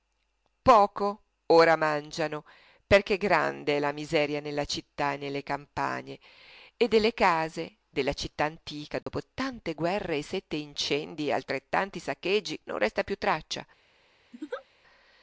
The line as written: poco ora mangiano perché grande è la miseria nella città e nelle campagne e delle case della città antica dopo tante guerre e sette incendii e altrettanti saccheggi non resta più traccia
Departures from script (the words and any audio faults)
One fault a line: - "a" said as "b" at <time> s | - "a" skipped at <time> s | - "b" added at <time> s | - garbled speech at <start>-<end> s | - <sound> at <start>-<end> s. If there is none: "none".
- dropout at 9.0-9.1 s
- laugh at 14.3-14.7 s